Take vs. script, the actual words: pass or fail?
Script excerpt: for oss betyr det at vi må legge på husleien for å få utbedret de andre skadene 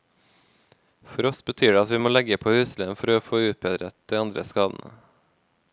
pass